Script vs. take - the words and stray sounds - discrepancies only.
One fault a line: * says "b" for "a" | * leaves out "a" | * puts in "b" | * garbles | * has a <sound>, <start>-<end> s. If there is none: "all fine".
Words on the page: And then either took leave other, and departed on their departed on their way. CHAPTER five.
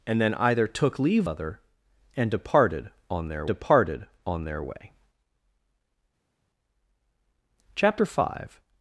all fine